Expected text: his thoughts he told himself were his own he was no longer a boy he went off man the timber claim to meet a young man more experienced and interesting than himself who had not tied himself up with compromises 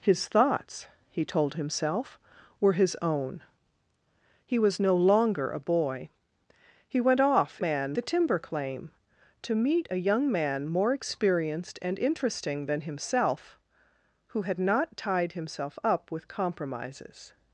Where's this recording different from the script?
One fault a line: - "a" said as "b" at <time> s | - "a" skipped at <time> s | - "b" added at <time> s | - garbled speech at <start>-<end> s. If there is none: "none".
none